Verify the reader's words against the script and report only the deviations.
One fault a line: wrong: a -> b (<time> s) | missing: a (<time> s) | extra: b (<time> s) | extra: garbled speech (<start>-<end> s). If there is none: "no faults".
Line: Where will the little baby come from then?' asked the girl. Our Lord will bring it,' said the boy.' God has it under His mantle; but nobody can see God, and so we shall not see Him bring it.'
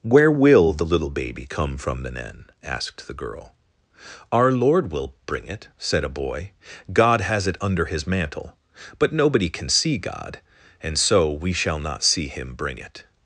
wrong: the -> a (6.0 s)